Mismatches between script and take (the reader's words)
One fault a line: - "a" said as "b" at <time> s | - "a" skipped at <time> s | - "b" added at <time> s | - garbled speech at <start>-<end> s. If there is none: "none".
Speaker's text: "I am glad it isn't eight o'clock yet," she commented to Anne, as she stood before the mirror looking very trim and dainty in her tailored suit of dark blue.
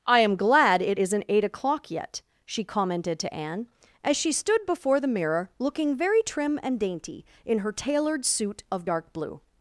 none